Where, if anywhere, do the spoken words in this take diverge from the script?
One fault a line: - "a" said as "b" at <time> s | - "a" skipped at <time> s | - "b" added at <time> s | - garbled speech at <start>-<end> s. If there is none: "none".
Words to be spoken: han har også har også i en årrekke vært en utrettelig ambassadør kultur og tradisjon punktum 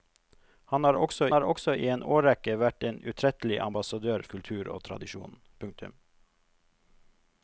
none